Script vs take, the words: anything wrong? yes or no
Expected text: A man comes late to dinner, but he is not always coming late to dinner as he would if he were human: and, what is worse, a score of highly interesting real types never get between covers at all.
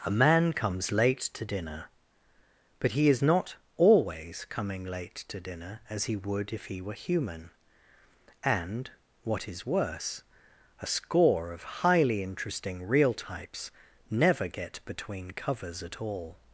no